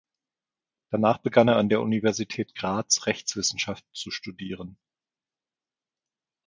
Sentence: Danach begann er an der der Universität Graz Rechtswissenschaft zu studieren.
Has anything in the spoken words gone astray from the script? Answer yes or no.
yes